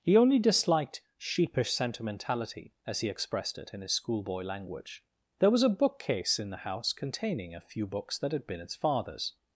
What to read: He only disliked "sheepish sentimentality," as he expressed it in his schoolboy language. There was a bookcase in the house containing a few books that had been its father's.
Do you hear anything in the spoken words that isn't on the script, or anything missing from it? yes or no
no